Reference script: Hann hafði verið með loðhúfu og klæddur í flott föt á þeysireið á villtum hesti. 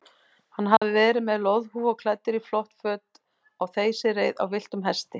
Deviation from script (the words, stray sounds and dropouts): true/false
true